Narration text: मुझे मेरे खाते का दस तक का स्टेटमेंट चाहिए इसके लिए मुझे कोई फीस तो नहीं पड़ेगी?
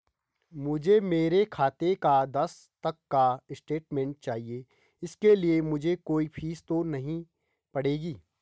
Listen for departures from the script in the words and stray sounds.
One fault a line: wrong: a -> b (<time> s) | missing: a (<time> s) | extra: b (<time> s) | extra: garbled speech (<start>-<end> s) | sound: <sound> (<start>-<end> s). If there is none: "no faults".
no faults